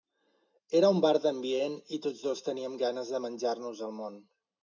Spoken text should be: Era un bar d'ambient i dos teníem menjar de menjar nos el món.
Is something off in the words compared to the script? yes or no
yes